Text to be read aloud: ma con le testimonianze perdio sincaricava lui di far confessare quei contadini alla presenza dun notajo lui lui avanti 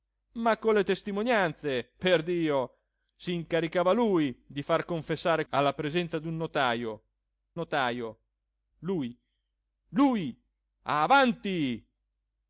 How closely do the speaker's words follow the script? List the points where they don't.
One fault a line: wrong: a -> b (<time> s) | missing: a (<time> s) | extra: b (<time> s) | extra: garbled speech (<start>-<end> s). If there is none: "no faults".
missing: quei contadini (5.5 s)
extra: notajo (7.5 s)